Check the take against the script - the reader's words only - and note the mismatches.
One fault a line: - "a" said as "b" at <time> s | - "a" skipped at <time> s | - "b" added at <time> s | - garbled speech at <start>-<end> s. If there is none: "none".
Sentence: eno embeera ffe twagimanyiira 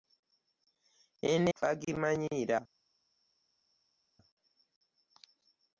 - "embeera ffe" skipped at 1.5 s